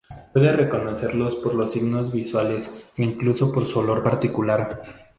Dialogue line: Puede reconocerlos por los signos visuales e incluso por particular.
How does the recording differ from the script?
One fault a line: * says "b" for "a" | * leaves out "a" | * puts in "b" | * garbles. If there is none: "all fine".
* puts in "su olor"